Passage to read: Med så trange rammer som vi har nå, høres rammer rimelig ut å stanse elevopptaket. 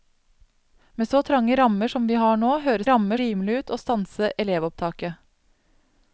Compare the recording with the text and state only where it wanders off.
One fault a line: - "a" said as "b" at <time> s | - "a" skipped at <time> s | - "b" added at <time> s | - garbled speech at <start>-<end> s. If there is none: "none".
none